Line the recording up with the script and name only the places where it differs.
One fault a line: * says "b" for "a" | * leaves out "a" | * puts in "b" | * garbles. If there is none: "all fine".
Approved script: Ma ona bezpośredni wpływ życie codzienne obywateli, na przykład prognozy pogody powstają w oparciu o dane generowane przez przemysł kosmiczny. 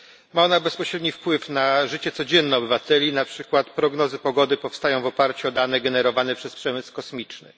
* puts in "na"